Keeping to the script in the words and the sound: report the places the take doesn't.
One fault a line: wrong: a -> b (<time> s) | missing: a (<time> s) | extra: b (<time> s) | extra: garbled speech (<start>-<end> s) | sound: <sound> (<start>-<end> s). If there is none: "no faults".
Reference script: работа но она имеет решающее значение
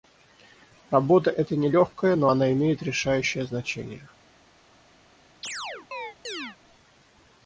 extra: эта нелегкая (1.3 s)
sound: chirp (5.4-6.6 s)